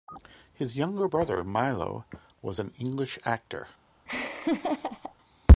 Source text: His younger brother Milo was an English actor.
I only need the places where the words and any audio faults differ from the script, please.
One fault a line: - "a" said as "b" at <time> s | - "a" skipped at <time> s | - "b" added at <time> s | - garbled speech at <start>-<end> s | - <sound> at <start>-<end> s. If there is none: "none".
- laugh at 4.1-5.2 s